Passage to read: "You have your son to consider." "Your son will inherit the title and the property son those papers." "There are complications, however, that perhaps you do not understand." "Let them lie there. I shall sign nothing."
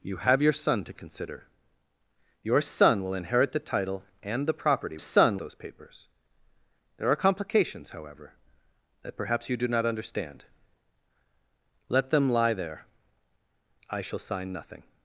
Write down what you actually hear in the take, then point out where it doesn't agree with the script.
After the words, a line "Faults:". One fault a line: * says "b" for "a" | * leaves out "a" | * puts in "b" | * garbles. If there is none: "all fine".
"You have your son to consider." "Your son will inherit the title and the property son those papers." "There are complications, however, that perhaps you do not understand." "Let them lie there. I shall sign nothing."
Faults:
all fine